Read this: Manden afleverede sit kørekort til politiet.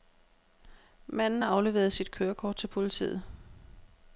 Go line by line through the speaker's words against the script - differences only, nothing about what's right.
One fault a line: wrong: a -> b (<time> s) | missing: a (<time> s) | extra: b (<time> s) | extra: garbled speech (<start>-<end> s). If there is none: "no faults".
no faults